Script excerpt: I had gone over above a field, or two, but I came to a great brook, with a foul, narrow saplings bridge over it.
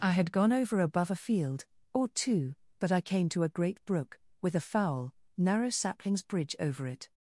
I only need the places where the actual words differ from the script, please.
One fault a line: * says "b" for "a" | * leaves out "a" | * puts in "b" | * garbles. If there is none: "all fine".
all fine